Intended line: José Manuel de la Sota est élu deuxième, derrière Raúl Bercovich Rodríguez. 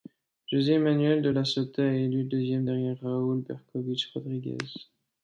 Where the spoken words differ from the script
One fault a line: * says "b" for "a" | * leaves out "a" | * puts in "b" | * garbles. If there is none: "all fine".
all fine